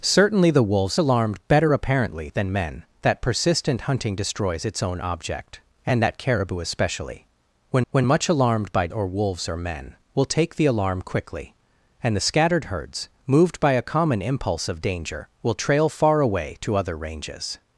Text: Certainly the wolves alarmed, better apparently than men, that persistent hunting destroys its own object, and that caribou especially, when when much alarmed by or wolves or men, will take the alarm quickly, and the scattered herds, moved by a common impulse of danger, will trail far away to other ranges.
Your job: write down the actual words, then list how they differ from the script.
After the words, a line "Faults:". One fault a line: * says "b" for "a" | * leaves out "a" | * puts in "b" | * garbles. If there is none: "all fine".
Certainly the wolves alarmed, better apparently than men, that persistent hunting destroys its own object, and that caribou especially, when when much alarmed by or wolves or men, will take the alarm quickly, and the scattered herds, moved by a common impulse of danger, will trail far away to other ranges.
Faults:
all fine